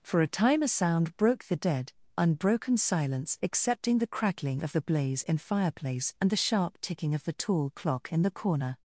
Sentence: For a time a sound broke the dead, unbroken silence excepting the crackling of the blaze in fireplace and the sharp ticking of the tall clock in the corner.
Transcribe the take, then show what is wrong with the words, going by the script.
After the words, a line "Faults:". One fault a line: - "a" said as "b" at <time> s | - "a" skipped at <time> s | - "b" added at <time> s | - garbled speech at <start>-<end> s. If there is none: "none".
For a time a sound broke the dead, unbroken silence excepting the crackling of the blaze in fireplace and the sharp ticking of the tall clock in the corner.
Faults:
none